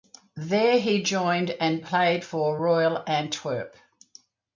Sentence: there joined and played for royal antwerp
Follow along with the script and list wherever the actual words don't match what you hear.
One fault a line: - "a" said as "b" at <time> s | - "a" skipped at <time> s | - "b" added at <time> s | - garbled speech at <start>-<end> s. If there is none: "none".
- "he" added at 0.8 s